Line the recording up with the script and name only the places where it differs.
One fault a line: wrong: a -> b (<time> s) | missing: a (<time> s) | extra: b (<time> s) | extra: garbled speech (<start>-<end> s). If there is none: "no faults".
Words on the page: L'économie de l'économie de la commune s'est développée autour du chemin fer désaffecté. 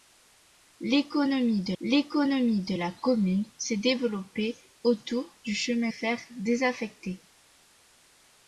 no faults